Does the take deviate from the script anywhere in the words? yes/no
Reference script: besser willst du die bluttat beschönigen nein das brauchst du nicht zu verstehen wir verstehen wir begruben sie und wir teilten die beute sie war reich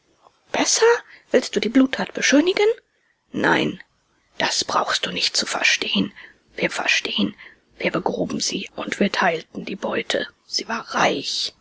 no